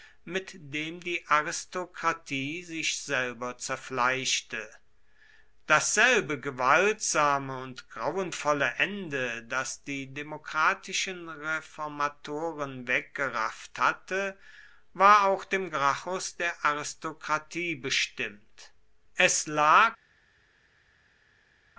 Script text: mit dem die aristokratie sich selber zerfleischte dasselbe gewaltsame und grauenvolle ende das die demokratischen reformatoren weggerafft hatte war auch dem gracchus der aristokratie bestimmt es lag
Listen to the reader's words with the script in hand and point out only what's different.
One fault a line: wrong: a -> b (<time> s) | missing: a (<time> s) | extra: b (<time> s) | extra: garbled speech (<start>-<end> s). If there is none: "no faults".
no faults